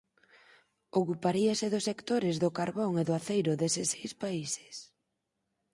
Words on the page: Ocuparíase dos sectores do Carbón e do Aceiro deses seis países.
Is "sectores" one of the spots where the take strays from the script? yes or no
no